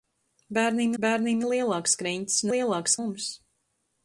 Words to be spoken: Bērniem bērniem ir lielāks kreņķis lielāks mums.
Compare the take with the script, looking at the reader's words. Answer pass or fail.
pass